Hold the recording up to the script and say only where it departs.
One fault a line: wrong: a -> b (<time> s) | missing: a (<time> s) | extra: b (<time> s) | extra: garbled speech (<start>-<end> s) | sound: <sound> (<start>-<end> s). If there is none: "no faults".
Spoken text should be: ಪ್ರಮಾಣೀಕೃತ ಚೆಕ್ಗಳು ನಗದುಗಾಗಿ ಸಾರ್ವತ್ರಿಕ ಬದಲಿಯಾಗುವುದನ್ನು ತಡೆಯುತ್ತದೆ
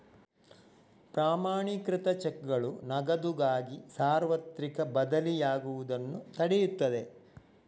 no faults